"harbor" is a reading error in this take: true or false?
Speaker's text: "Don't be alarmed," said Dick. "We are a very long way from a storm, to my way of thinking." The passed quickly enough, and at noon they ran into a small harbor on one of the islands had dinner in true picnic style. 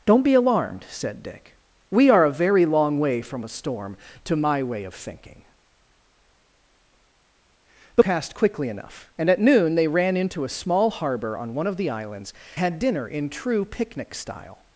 false